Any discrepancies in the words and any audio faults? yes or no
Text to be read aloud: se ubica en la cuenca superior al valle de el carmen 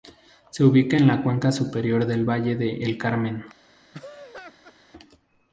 yes